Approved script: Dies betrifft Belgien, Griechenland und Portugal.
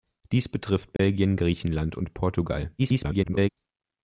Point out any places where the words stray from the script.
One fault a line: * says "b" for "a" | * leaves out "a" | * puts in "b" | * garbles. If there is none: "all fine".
* garbles